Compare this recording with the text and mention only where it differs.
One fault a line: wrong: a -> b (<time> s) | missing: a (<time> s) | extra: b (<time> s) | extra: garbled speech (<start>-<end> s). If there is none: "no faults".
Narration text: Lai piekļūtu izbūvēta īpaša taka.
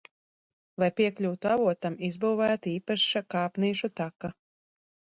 extra: avotam (1.5 s)
extra: kāpnīšu (3.4 s)